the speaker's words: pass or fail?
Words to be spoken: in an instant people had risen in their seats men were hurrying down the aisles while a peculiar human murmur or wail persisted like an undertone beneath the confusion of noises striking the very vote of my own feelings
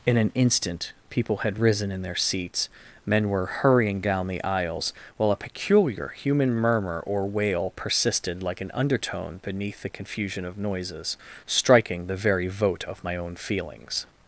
pass